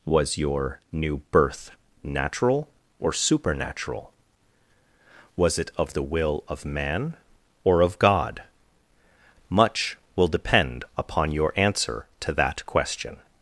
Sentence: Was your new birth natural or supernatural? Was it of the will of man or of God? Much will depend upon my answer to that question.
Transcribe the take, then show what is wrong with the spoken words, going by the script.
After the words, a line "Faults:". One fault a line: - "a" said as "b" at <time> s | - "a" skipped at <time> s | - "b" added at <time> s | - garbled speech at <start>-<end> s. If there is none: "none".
Was your new birth natural or supernatural? Was it of the will of man or of God? Much will depend upon your answer to that question.
Faults:
- "my" said as "your" at 11.3 s